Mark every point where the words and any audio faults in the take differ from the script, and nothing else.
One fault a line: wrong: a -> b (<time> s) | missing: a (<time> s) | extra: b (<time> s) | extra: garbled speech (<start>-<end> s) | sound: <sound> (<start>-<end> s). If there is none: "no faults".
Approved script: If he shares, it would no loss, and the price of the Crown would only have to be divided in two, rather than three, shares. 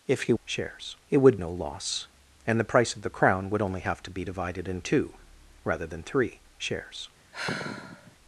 sound: sigh (7.3-8.2 s)